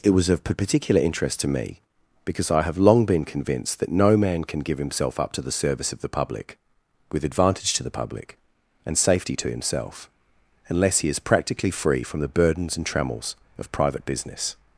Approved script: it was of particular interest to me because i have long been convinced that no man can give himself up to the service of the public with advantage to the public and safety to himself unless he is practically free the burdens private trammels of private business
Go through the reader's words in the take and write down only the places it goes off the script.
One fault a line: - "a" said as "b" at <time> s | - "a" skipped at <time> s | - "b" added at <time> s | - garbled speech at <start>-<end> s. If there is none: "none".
- "from" added at 12.0 s
- "private" said as "and" at 12.8 s